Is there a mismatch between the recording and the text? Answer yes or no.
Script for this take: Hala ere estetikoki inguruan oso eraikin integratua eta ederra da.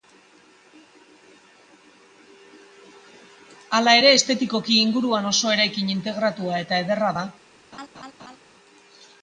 no